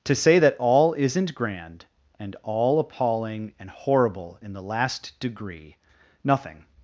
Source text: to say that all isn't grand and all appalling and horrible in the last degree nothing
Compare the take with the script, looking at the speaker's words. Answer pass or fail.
pass